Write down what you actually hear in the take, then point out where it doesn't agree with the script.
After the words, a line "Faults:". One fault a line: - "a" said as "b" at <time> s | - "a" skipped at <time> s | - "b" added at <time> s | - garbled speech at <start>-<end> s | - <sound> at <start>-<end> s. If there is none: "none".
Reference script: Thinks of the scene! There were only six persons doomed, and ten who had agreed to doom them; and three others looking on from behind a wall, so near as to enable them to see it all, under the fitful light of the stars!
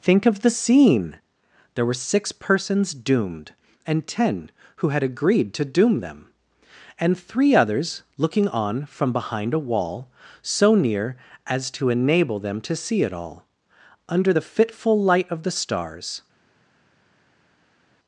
Think of the scene! There were six persons doomed, and ten who had agreed to doom them; and three others looking on from behind a wall, so near as to enable them to see it all, under the fitful light of the stars!
Faults:
- "Thinks" said as "Think" at 0.0 s
- "only" skipped at 2.1 s